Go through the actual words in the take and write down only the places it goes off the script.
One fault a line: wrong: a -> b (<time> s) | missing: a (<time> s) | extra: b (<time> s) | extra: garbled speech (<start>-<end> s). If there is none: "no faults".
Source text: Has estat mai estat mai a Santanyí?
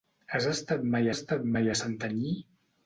no faults